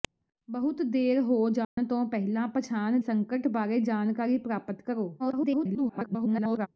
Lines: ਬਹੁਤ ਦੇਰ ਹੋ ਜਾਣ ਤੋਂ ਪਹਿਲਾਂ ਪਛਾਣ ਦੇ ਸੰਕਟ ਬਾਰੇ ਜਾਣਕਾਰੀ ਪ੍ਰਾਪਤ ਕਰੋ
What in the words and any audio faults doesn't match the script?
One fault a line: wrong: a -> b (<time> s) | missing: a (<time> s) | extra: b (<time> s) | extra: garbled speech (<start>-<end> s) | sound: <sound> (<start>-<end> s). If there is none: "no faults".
sound: dropout (1.6-1.8 s)
missing: ਦੇ (3.0 s)
extra: garbled speech (5.2-6.7 s)